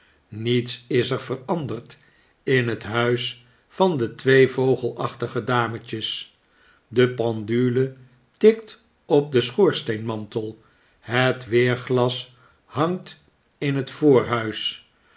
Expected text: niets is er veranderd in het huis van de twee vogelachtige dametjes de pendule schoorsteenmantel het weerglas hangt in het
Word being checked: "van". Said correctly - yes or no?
yes